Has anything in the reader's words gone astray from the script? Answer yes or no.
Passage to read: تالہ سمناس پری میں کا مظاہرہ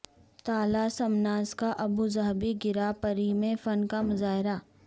yes